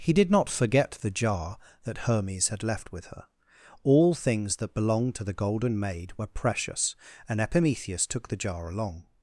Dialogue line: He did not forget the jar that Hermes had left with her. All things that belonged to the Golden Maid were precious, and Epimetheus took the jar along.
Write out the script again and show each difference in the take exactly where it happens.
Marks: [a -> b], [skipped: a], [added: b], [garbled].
He did not forget the jar that Hermes had left with her. All things that belonged to the Golden Maid were precious, and Epimetheus took the jar along.